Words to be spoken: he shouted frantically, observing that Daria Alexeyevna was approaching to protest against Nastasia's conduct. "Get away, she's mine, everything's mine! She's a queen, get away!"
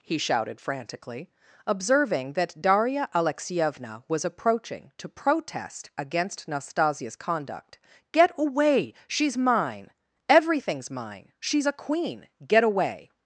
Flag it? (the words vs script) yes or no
no